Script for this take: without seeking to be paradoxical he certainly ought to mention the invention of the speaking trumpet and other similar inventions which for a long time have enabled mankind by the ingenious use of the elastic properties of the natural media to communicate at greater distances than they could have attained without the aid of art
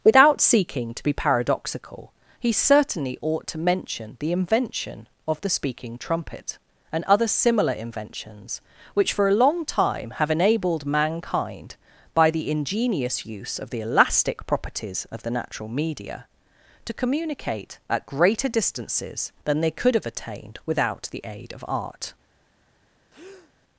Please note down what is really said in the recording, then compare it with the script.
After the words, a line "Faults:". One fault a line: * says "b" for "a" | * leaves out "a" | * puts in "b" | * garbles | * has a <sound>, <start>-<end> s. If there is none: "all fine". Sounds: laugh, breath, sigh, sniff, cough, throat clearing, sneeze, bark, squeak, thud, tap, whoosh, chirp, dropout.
without seeking to be paradoxical he certainly ought to mention the invention of the speaking trumpet and other similar inventions which for a long time have enabled mankind by the ingenious use of the elastic properties of the natural media to communicate at greater distances than they could have attained without the aid of art
Faults:
* has a breath, 23.1-23.5 s